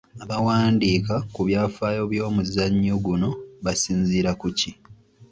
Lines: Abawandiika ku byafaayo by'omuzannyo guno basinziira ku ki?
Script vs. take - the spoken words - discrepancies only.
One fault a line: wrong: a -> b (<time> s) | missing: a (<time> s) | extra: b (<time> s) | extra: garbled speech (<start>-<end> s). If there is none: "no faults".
no faults